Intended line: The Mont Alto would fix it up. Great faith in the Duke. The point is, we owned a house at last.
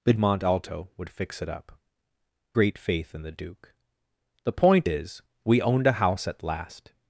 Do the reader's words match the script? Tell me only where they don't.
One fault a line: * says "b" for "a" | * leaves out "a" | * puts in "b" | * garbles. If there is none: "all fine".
all fine